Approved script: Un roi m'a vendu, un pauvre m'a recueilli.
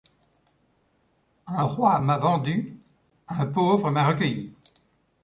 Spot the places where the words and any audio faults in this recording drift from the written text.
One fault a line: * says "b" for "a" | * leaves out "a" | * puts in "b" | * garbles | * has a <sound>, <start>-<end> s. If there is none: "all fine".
all fine